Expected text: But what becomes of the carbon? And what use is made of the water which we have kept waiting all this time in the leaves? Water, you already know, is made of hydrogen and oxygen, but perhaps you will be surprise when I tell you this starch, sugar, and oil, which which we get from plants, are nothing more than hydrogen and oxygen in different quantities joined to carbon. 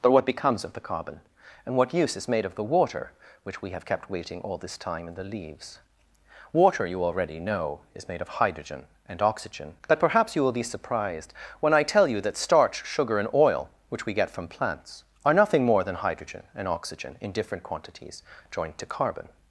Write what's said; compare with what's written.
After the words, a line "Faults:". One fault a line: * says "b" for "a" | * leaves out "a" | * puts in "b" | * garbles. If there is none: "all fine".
But what becomes of the carbon? And what use is made of the water which we have kept waiting all this time in the leaves? Water, you already know, is made of hydrogen and oxygen, but perhaps you will be surprised when I tell you that starch, sugar, and oil, which we get from plants, are nothing more than hydrogen and oxygen in different quantities joined to carbon.
Faults:
* says "surprised" for "surprise"
* says "that" for "this"
* leaves out "which"